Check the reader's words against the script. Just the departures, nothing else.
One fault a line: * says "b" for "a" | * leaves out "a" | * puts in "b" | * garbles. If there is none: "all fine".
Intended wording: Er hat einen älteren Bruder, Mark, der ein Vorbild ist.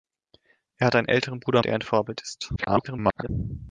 * leaves out "Mark"
* garbles